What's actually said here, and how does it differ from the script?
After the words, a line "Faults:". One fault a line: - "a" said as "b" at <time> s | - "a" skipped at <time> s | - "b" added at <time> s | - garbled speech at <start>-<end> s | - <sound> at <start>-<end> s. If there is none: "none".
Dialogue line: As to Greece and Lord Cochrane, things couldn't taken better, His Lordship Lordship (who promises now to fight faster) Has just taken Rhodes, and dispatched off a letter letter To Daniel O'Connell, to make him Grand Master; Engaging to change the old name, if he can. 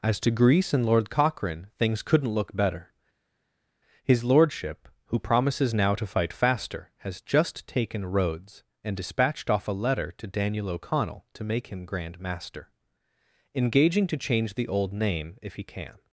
As to Greece and Lord Cochrane, things couldn't look better, His Lordship (who promises now to fight faster) Has just taken Rhodes, and dispatched off a letter To Daniel O'Connell, to make him Grand Master; Engaging to change the old name, if he can.
Faults:
- "taken" said as "look" at 2.3 s
- "Lordship" skipped at 4.9 s
- "letter" skipped at 10.1 s